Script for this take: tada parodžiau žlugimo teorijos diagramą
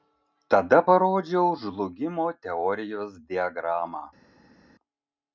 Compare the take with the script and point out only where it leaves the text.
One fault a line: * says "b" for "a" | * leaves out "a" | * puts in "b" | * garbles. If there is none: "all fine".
all fine